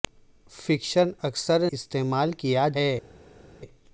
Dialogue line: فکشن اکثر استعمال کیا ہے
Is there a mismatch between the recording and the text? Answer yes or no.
no